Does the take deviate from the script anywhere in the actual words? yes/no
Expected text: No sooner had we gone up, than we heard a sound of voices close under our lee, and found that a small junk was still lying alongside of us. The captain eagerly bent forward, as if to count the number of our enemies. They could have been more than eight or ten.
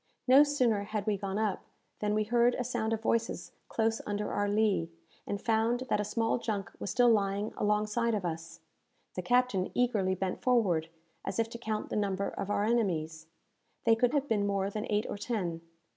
no